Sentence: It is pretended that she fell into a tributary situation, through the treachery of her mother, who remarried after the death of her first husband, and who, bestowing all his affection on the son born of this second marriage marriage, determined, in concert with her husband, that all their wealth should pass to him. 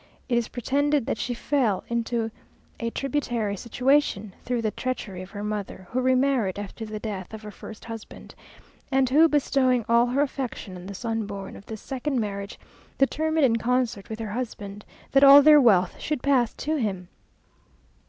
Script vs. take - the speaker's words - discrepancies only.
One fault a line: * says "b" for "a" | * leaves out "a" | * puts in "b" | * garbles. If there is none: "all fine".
* says "her" for "his"
* leaves out "marriage"